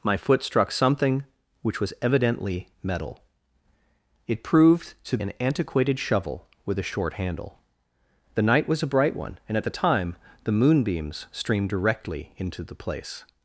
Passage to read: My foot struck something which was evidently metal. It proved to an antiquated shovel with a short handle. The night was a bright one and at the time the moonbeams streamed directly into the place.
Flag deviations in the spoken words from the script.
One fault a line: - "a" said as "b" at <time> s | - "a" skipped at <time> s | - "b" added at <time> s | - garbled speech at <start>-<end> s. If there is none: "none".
none